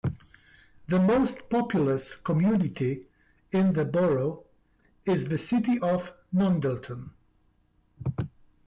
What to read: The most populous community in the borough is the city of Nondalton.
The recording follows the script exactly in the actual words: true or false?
true